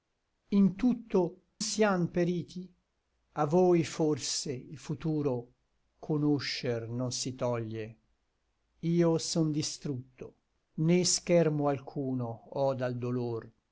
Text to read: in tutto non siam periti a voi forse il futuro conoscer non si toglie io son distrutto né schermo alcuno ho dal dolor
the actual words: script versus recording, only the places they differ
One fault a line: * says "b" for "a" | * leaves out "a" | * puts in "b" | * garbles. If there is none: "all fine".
* leaves out "non"